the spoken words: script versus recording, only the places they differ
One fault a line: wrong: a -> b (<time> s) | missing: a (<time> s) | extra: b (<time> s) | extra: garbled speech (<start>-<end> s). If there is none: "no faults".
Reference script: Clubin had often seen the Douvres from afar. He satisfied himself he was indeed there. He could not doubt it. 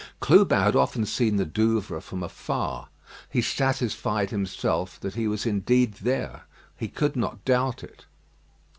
extra: that (5.0 s)